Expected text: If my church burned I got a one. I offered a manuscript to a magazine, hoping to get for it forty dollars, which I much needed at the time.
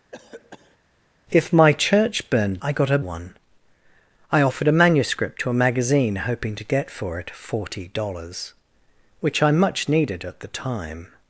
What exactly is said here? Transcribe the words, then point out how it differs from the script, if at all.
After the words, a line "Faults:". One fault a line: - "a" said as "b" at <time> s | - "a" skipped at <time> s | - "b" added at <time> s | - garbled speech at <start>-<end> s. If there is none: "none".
If my church burned I got a one. I offered a manuscript to a magazine, hoping to get for it forty dollars, which I much needed at the time.
Faults:
none